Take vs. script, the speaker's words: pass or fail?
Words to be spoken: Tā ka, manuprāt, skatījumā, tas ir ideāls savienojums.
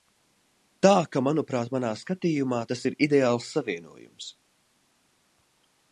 fail